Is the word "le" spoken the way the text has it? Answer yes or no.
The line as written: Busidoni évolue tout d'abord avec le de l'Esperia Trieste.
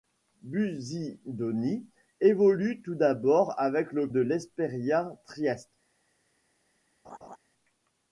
yes